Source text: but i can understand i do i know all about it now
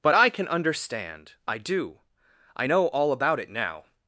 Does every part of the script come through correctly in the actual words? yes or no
yes